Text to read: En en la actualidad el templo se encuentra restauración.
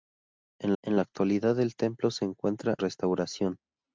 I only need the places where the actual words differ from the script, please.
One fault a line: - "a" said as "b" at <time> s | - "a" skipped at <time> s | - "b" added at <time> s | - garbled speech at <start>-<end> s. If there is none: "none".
none